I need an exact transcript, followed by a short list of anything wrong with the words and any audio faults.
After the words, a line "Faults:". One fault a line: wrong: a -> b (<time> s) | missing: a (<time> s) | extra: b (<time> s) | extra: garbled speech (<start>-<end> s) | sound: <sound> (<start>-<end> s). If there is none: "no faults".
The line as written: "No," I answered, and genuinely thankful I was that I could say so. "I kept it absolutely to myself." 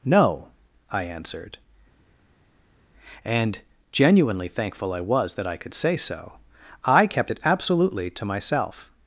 "No," I answered, and genuinely thankful I was that I could say so. "I kept it absolutely to myself."
Faults:
no faults